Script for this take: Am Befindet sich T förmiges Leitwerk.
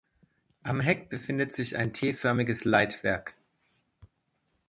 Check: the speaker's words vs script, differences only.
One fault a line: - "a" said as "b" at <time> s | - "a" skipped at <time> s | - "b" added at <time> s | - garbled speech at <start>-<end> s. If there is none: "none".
- "Heck" added at 0.8 s
- "ein" added at 1.8 s